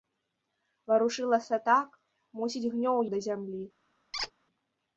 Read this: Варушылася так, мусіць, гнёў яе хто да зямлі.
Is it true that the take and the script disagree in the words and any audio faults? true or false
true